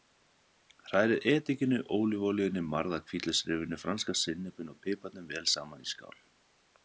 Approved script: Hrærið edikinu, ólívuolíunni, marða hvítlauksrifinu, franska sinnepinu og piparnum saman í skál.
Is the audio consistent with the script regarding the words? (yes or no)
no